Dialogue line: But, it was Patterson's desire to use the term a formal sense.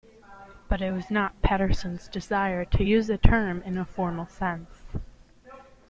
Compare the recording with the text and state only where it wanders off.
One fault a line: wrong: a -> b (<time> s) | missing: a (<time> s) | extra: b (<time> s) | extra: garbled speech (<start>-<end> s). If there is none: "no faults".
extra: not (1.1 s)
extra: in (3.7 s)